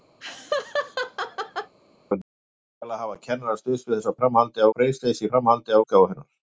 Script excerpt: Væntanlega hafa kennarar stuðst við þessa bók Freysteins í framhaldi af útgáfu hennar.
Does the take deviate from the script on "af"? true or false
true